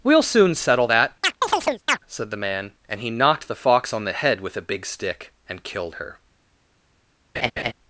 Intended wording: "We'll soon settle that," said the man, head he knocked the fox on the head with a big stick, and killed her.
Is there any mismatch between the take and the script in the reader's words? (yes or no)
yes